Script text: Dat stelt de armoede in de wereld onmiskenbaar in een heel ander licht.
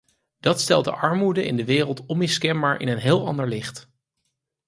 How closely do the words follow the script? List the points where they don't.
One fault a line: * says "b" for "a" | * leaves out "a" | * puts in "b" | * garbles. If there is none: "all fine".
all fine